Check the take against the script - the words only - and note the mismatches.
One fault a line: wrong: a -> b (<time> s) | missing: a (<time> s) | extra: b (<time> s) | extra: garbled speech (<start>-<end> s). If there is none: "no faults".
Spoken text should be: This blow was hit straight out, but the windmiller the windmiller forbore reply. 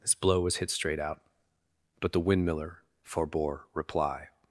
missing: the windmiller (2.8 s)